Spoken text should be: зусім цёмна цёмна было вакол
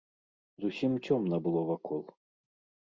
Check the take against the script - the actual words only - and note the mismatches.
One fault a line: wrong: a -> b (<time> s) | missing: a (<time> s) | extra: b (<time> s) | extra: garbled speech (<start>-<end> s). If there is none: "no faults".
missing: цёмна (1.4 s)